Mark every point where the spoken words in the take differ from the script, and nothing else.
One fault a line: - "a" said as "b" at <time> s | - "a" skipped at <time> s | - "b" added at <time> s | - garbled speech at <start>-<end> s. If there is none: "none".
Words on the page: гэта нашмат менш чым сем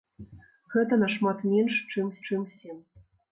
- "чым" added at 2.3 s